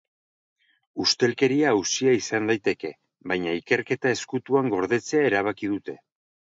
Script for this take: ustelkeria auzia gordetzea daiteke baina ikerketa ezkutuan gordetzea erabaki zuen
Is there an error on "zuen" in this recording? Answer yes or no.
yes